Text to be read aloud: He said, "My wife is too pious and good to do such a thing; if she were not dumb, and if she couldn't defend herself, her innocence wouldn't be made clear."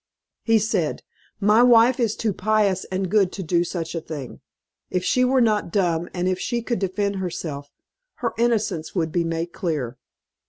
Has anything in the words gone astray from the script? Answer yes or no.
yes